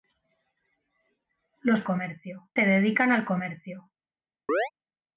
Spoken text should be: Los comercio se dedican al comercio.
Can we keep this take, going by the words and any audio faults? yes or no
no